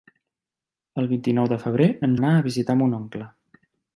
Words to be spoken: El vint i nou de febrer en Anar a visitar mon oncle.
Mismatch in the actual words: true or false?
false